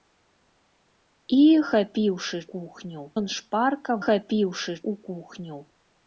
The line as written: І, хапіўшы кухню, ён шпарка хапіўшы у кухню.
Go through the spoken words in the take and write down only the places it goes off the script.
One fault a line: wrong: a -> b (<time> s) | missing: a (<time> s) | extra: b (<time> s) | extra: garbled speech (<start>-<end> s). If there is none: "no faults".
no faults